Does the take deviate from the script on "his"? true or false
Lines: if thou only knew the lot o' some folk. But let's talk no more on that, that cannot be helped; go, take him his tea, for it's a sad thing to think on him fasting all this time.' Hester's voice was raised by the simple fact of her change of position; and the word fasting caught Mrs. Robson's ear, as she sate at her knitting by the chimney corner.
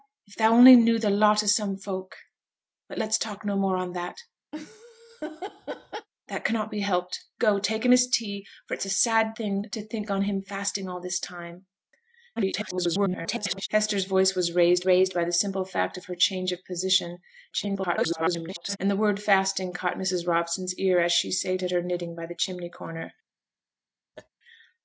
false